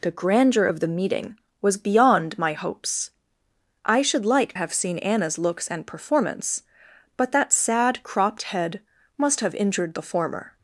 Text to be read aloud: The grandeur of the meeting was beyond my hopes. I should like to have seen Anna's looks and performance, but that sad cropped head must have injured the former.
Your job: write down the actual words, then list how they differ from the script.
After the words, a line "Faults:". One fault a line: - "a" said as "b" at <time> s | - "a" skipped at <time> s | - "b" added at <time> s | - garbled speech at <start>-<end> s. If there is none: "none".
The grandeur of the meeting was beyond my hopes. I should like have seen Anna's looks and performance, but that sad cropped head must have injured the former.
Faults:
- "to" skipped at 4.5 s